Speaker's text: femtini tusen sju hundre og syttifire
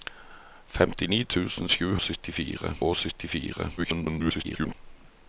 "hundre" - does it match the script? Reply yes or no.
no